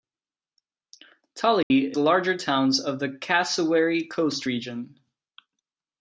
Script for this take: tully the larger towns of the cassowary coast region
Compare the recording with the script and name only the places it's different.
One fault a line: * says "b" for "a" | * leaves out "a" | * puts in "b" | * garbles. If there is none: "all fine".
all fine